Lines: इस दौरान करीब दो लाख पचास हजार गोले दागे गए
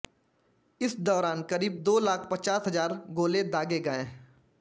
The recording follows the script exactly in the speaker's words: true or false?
true